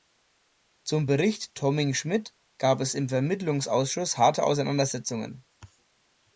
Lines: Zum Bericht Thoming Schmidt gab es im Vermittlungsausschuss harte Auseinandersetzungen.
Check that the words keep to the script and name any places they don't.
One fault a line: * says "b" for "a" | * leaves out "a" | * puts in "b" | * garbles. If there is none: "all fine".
all fine